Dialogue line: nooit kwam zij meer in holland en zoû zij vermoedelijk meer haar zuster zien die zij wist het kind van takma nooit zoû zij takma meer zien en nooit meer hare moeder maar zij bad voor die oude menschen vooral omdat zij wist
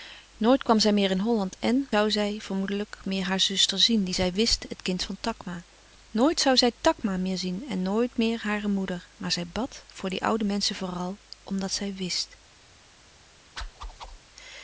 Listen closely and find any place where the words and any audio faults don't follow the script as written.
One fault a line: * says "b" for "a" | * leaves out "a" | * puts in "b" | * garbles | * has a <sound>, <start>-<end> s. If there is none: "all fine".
* has a whoosh, 13.6-14.2 s